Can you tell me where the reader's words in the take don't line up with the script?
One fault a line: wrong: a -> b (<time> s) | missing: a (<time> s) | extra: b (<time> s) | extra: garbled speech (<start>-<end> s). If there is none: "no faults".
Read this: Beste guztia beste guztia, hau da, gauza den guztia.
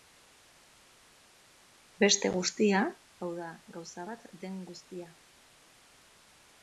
missing: beste guztia (2.8 s)
extra: bat (4.1 s)